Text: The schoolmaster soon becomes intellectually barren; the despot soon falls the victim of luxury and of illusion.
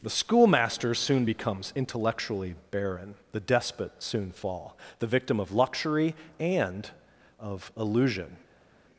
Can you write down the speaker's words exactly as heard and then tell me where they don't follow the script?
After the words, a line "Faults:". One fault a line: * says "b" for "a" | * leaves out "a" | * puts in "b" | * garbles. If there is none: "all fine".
The schoolmaster soon becomes intellectually barren; the despot soon fall the victim of luxury and of illusion.
Faults:
* says "fall" for "falls"